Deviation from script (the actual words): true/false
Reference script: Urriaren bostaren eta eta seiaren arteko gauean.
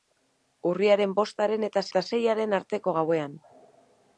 false